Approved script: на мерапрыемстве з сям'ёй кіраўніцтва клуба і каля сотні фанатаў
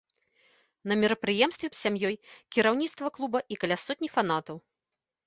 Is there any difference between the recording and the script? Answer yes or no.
no